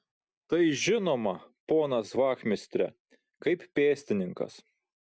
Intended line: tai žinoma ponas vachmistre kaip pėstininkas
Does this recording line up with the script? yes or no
yes